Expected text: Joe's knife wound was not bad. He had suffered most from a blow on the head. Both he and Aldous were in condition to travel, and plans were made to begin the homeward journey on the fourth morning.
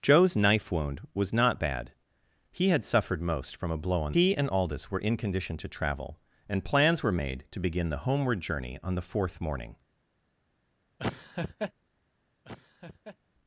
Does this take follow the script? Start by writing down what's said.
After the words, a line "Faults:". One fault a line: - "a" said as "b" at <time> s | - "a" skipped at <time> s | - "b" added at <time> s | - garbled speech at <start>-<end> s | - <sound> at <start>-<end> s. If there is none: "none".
Joe's knife wound was not bad. He had suffered most from a blow on he and Aldous were in condition to travel, and plans were made to begin the homeward journey on the fourth morning.
Faults:
- "the head Both" skipped at 4.2 s
- laugh at 11.0-11.7 s
- laugh at 12.4-13.2 s